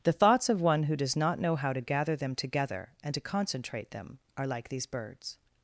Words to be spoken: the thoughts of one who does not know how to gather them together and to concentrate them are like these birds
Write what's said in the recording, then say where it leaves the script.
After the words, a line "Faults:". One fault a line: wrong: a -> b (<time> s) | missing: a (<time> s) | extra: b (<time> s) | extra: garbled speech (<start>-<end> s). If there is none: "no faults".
the thoughts of one who does not know how to gather them together and to concentrate them are like these birds
Faults:
no faults